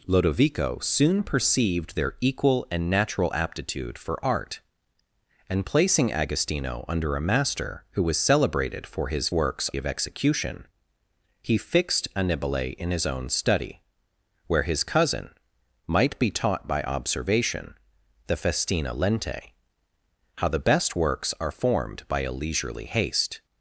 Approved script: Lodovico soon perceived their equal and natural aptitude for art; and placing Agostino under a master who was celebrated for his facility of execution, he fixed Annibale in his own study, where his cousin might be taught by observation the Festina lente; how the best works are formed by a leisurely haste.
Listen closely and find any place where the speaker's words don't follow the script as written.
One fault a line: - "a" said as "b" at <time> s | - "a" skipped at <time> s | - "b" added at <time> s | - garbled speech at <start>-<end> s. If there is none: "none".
- "facility" said as "works" at 9.3 s